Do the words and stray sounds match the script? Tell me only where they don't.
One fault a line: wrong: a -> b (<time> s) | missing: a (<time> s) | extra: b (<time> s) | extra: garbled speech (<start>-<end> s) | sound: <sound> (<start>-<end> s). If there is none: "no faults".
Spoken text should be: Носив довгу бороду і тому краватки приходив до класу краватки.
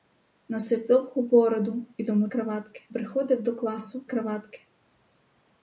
no faults